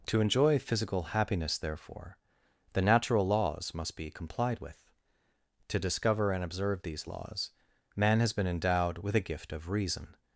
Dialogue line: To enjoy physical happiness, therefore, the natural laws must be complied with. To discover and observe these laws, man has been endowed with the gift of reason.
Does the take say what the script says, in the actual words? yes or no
no